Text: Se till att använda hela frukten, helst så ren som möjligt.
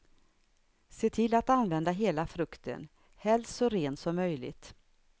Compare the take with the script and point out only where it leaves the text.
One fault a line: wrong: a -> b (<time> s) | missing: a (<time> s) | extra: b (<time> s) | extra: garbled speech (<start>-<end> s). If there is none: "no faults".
no faults